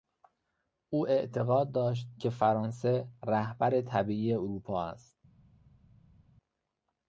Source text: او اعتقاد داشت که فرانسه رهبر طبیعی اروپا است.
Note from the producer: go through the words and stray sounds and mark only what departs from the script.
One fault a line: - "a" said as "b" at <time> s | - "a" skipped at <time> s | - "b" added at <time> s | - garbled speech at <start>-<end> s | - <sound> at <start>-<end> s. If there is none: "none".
none